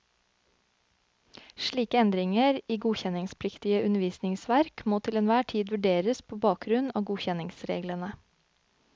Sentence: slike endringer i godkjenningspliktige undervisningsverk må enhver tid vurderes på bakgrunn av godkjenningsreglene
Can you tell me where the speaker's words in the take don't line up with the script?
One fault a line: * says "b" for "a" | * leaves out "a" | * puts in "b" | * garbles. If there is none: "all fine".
* puts in "til"